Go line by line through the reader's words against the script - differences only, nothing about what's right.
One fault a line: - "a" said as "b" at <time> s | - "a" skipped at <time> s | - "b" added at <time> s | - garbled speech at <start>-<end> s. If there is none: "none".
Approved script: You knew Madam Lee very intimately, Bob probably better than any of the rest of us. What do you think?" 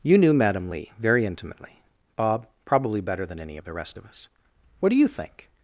none